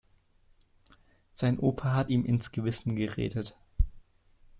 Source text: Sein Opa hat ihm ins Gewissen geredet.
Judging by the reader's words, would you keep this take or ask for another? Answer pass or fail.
pass